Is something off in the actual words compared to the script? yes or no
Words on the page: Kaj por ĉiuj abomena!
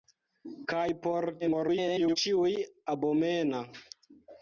yes